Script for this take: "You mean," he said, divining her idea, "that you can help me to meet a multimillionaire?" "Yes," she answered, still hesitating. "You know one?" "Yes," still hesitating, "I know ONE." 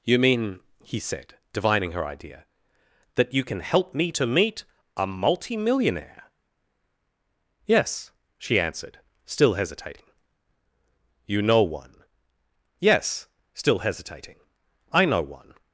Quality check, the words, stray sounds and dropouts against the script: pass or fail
pass